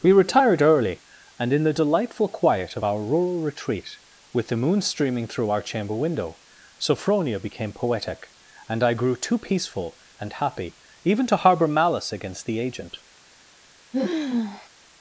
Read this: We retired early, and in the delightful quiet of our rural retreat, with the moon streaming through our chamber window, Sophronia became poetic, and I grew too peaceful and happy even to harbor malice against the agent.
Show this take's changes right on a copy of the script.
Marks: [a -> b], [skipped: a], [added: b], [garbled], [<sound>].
We retired early, and in the delightful quiet of our rural retreat, with the moon streaming through our chamber window, Sophronia became poetic, and I grew too peaceful and happy even to harbor malice against the agent. [sigh]